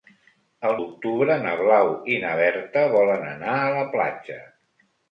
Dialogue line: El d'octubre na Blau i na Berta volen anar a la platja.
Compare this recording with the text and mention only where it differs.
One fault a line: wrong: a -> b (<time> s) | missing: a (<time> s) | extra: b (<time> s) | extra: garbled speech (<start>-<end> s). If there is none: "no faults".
no faults